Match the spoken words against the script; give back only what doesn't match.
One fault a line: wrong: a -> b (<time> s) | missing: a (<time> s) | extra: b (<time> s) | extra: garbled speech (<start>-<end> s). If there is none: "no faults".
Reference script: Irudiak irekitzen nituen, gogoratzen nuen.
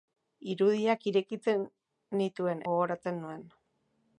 no faults